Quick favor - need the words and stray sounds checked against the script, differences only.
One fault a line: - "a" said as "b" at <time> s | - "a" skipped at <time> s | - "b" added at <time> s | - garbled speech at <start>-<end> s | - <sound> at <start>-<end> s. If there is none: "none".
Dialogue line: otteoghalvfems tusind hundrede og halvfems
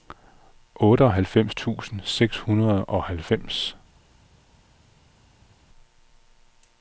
- "seks" added at 2.0 s